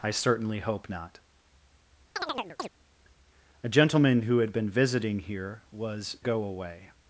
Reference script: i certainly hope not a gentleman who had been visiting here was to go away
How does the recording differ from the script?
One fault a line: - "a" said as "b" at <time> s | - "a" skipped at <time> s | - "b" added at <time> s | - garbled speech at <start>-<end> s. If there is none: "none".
- "to" skipped at 6.2 s